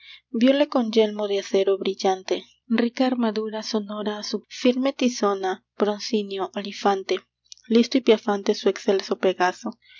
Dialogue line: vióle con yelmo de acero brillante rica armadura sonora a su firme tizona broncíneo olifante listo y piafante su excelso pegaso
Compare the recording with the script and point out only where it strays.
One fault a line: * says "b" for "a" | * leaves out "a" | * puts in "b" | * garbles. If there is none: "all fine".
all fine